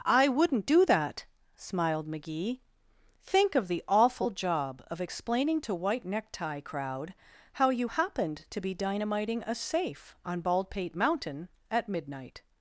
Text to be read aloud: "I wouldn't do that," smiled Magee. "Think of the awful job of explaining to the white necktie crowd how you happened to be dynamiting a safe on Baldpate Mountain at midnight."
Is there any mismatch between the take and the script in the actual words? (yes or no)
yes